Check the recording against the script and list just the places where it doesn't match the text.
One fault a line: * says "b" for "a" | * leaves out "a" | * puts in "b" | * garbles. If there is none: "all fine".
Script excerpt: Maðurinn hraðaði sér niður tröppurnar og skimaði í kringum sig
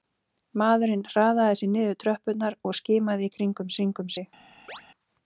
* puts in "kringum"